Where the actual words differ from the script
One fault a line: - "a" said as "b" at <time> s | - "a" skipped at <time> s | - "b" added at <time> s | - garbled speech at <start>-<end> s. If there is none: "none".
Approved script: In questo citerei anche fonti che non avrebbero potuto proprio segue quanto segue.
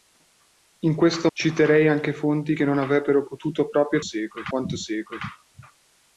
none